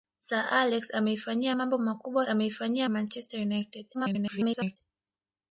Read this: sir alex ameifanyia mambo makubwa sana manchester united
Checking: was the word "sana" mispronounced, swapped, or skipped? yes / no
yes